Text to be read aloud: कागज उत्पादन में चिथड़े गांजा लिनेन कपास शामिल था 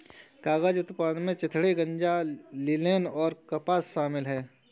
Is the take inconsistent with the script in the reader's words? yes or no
yes